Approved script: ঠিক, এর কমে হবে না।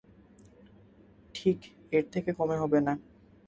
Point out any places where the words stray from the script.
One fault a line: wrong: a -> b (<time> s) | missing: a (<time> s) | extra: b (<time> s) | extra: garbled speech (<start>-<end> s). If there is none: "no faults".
extra: থেকে (2.1 s)